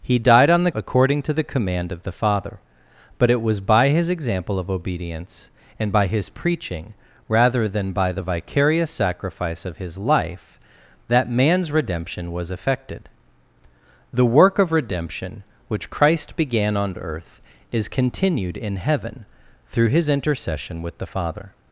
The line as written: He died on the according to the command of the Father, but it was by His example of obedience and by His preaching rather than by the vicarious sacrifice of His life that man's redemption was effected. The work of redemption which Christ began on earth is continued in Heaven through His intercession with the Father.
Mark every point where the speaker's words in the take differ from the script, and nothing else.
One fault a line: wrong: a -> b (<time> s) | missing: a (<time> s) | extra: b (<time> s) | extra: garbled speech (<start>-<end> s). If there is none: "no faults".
no faults